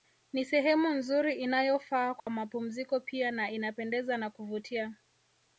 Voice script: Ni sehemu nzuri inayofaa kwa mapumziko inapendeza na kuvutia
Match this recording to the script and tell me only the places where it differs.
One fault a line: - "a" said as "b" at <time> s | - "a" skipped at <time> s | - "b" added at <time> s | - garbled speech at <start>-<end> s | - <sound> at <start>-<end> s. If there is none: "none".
- dropout at 2.2-2.3 s
- "pia na" added at 3.0 s